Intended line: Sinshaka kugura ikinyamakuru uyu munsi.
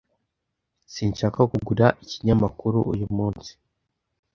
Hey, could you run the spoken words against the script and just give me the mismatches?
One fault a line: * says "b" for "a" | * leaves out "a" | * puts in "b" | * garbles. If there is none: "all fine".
all fine